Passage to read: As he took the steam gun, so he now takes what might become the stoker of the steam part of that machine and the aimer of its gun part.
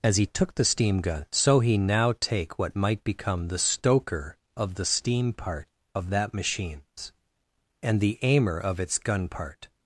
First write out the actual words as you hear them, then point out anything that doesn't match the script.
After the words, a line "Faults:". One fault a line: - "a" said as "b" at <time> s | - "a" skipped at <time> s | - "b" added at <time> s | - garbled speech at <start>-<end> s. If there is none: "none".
As he took the steam gun, so he now take what might become the stoker of the steam part of that machines and the aimer of its gun part.
Faults:
- "takes" said as "take" at 2.2 s
- "machine" said as "machines" at 6.3 s